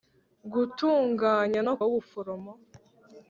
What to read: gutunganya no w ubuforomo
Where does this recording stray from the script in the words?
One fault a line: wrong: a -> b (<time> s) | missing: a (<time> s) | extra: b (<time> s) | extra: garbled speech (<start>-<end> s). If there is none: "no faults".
no faults